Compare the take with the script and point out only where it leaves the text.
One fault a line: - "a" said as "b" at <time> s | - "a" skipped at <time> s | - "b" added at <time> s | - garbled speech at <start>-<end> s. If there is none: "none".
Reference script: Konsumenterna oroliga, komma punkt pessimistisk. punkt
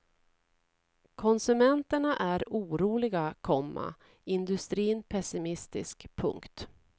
- "är" added at 2.2 s
- "punkt" said as "industrin" at 4.2 s